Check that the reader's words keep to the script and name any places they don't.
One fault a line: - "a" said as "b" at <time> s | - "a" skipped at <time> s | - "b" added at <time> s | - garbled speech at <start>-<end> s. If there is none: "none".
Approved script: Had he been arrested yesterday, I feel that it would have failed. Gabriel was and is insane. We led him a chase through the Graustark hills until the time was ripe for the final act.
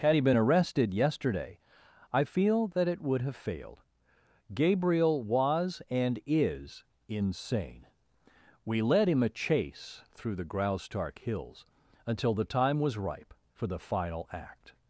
none